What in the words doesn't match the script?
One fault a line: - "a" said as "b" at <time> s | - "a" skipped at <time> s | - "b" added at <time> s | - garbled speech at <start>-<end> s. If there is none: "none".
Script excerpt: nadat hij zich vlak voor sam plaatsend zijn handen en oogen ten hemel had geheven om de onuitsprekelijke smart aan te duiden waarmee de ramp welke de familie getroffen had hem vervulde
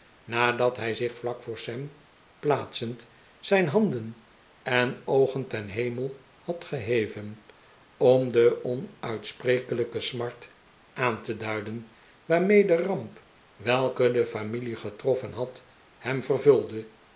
none